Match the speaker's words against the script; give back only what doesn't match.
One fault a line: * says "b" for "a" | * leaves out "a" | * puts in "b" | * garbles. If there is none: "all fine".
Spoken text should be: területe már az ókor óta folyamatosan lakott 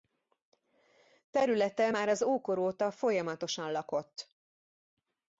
all fine